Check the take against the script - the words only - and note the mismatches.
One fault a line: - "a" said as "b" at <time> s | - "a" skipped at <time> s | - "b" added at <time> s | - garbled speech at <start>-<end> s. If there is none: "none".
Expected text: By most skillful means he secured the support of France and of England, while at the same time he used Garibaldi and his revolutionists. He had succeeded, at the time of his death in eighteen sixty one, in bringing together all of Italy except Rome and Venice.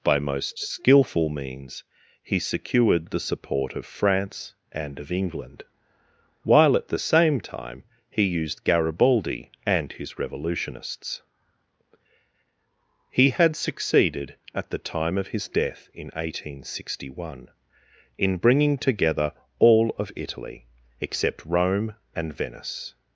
none